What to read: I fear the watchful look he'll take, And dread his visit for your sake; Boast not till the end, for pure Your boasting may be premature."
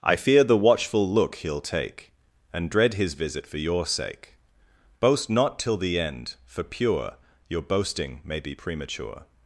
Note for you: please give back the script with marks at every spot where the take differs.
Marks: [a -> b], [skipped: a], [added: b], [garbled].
I fear the watchful look he'll take, And dread his visit for your sake; Boast not till the end, for pure Your boasting may be premature."